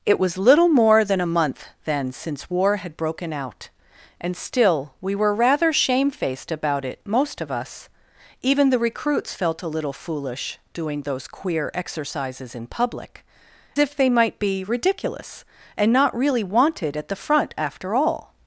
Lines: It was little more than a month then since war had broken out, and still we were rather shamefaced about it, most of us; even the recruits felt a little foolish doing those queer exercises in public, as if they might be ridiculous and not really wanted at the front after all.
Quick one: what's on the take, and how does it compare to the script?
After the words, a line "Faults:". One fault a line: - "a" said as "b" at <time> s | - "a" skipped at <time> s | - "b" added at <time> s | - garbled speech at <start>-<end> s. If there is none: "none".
It was little more than a month then since war had broken out, and still we were rather shamefaced about it, most of us; even the recruits felt a little foolish doing those queer exercises in public, if they might be ridiculous and not really wanted at the front after all.
Faults:
- "as" skipped at 13.2 s